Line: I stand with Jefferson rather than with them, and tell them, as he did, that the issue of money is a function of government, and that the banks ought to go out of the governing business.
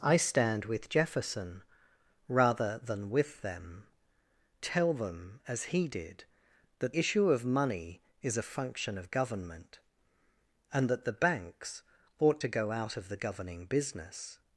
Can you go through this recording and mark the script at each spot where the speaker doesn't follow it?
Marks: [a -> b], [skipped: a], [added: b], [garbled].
I stand with Jefferson rather than with them, [skipped: and] tell them, as he did, that [skipped: the] issue of money is a function of government, and that the banks ought to go out of the governing business.